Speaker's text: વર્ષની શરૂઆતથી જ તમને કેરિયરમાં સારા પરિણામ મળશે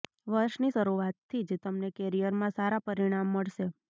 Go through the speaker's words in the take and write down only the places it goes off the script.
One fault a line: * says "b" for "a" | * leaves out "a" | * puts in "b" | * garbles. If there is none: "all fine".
all fine